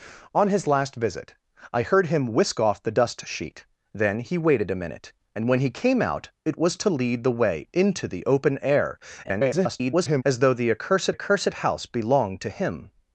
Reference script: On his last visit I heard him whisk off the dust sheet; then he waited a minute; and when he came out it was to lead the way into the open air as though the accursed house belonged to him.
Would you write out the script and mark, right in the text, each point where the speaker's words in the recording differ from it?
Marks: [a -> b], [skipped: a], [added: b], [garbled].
On his last visit I heard him whisk off the dust sheet; then he waited a minute; and when he came out it was to lead the way into the open air [garbled] as though the accursed [added: accursed] house belonged to him.